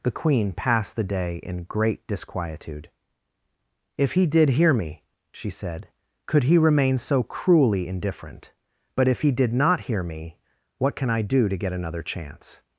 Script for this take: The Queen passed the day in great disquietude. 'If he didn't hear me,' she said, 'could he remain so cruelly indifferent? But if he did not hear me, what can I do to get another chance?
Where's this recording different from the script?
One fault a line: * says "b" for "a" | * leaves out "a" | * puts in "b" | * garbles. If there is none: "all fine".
* says "did" for "didn't"